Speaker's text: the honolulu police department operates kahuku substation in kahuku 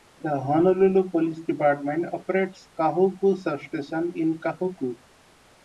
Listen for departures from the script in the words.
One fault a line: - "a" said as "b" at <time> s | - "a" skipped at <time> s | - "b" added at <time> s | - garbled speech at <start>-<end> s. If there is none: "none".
none